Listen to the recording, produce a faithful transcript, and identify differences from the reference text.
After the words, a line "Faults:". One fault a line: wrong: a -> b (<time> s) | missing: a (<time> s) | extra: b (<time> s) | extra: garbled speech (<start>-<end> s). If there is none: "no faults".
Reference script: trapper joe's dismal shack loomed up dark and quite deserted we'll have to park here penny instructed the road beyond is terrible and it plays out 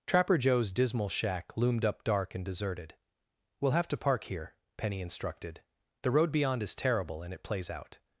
trapper joe's dismal shack loomed up dark and deserted we'll have to park here penny instructed the road beyond is terrible and it plays out
Faults:
missing: quite (2.4 s)